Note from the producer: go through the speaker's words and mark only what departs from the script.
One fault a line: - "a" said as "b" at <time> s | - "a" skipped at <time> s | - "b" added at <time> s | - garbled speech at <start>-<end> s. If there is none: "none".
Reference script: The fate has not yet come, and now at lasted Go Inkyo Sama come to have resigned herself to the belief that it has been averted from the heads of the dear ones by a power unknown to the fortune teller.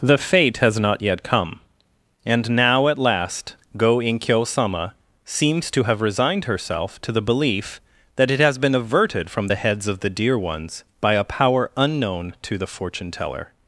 - "lasted" said as "last" at 3.0 s
- "come" said as "seems" at 5.2 s